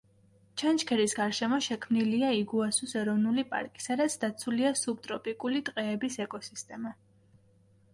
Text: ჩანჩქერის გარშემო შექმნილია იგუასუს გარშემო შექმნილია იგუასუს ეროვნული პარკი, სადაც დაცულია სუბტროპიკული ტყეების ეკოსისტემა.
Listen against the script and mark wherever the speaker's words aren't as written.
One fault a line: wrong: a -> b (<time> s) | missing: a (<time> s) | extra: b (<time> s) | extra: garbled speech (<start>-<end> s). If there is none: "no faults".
missing: გარშემო შექმნილია იგუასუს (3.0 s)